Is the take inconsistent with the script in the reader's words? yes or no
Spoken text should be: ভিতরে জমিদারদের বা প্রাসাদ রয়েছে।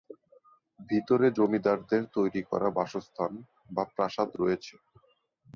yes